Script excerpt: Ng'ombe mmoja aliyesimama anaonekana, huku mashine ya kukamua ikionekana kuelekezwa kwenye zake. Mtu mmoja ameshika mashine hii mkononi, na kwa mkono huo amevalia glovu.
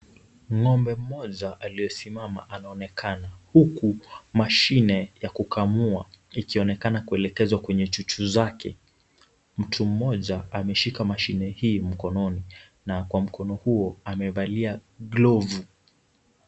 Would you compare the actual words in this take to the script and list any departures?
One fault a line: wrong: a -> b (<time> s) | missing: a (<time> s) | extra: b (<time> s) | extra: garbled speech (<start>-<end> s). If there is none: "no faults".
extra: chuchu (7.9 s)